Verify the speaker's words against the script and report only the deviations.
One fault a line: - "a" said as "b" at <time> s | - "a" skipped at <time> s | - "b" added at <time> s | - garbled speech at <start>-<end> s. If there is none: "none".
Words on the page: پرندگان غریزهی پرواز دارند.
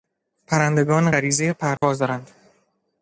none